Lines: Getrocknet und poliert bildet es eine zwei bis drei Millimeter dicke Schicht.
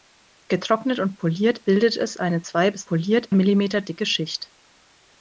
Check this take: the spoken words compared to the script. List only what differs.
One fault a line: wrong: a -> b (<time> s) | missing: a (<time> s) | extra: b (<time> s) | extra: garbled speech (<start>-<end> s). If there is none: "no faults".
wrong: drei -> poliert (2.8 s)